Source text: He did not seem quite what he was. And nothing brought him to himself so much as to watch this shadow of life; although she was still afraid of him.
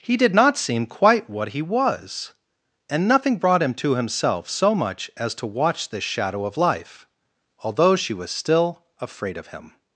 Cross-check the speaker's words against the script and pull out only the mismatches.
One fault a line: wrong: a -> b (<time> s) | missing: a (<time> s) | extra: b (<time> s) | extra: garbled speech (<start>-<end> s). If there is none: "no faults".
no faults